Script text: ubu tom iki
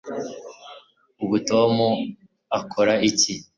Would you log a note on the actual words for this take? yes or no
yes